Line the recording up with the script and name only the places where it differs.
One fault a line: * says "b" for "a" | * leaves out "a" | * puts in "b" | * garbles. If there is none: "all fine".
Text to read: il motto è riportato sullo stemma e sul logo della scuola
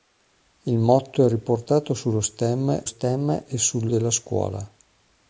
* puts in "stemma"
* leaves out "logo"